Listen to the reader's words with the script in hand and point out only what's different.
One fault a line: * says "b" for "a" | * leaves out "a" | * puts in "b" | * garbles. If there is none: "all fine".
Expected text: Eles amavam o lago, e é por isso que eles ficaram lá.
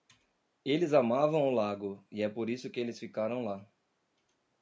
all fine